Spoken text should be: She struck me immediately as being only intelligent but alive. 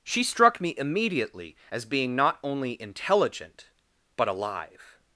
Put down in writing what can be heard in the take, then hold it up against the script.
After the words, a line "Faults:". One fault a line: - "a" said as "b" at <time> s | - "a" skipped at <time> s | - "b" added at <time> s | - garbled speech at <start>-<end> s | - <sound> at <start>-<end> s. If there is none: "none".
She struck me immediately as being not only intelligent but alive.
Faults:
- "not" added at 2.1 s